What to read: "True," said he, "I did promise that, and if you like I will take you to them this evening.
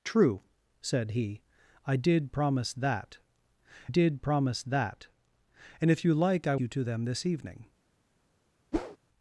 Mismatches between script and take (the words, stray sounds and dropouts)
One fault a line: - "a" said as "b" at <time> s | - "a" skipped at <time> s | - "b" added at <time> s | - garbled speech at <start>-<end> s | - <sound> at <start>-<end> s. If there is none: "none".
- "did promise that" added at 3.9 s
- "will take" skipped at 6.5 s
- whoosh at 8.7-9.0 s